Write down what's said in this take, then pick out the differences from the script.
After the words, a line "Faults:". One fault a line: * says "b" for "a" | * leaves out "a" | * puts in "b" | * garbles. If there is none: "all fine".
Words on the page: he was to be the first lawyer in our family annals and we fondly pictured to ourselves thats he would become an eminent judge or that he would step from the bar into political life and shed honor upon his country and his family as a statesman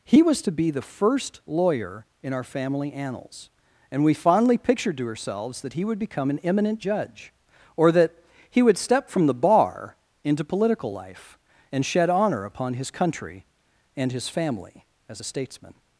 he was to be the first lawyer in our family annals and we fondly pictured to ourselves that he would become an eminent judge or that he would step from the bar into political life and shed honor upon his country and his family as a statesman
Faults:
* says "that" for "thats"